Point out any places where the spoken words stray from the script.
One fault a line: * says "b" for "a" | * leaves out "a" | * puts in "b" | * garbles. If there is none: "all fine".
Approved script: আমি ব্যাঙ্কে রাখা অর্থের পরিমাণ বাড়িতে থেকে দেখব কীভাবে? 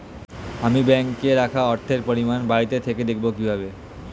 all fine